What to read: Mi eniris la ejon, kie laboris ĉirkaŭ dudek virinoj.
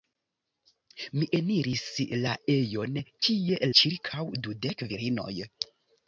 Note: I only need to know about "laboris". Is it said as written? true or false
false